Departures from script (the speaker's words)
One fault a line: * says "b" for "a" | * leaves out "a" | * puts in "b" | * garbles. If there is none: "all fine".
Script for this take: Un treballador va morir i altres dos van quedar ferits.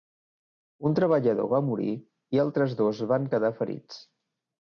all fine